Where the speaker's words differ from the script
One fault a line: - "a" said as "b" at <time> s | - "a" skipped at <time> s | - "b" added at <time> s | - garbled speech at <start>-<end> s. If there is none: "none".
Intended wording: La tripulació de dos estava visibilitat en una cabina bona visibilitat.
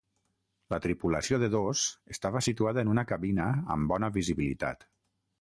- "visibilitat" said as "situada" at 2.5 s
- "amb" added at 3.8 s